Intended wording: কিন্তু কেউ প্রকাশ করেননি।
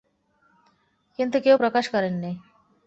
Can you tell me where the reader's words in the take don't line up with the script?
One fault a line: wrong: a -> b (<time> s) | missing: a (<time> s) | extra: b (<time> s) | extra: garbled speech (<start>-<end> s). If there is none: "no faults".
no faults